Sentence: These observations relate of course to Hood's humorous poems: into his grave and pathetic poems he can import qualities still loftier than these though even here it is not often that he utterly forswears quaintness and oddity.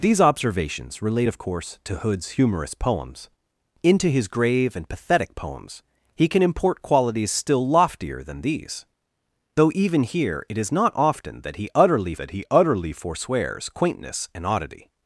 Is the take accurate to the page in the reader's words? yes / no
no